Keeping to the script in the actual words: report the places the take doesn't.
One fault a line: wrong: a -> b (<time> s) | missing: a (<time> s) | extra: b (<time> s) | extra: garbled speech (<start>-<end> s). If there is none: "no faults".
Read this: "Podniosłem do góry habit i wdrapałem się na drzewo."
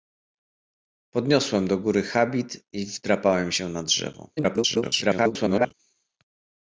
extra: garbled speech (4.4-5.7 s)